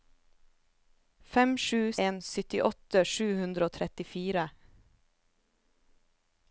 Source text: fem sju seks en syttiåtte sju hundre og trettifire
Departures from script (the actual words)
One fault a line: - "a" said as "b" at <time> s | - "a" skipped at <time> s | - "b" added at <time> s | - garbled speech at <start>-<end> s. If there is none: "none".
- "seks" skipped at 1.8 s